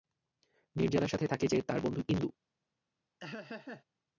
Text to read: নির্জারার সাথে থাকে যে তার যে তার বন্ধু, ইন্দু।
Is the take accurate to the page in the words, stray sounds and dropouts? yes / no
no